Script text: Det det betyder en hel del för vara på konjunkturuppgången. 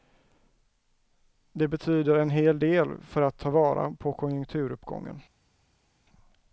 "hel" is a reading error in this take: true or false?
false